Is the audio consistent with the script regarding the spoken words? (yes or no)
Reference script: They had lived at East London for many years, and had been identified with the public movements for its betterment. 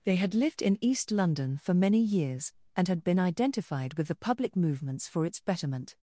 no